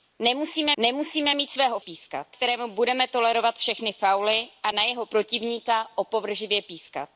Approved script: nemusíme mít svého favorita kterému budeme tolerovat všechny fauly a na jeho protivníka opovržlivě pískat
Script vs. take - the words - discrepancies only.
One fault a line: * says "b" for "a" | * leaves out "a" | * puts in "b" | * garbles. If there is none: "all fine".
* puts in "nemusíme"
* says "pískat" for "favorita"